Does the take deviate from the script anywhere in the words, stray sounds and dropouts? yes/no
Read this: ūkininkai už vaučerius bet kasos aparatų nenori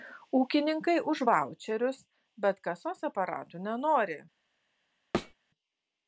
yes